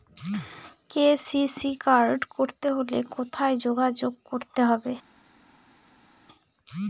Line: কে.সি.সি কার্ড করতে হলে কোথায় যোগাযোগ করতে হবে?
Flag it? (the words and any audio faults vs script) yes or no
no